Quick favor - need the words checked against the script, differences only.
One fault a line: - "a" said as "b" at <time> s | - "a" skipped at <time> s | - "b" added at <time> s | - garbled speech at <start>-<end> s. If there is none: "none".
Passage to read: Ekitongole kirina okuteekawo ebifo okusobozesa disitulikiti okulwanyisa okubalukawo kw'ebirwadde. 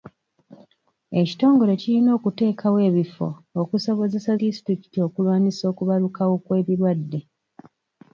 none